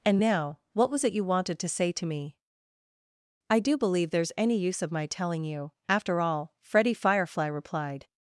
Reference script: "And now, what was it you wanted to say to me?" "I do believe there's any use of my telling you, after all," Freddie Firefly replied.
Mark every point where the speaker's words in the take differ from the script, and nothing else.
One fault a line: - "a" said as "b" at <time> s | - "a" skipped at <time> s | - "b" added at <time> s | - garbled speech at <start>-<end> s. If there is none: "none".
none